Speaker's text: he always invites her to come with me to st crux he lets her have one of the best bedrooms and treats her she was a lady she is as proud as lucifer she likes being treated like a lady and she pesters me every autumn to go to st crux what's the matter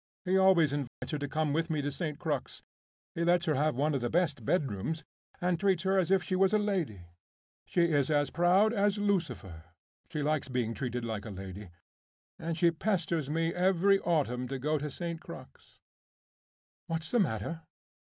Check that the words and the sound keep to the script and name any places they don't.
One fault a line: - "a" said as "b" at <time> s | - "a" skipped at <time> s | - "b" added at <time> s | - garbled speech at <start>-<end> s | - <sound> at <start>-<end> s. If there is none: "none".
- dropout at 0.9-1.0 s
- "as if" added at 6.0 s